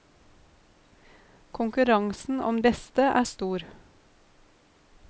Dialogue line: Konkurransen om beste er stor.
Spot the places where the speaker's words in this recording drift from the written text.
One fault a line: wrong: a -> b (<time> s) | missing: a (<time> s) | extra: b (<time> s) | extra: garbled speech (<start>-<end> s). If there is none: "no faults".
no faults